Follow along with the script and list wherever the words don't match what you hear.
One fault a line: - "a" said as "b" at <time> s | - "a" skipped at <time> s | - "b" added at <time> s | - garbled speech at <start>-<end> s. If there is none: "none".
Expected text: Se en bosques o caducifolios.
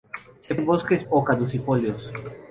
none